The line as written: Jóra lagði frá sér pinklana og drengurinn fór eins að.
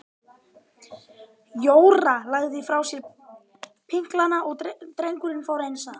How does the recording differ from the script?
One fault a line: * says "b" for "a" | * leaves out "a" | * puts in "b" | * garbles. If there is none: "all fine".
all fine